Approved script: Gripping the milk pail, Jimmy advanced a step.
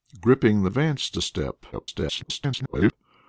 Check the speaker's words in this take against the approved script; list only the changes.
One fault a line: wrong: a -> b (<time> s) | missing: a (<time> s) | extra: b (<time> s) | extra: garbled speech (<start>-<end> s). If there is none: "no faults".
missing: milk pail Jimmy (0.7 s)
extra: garbled speech (1.7-2.9 s)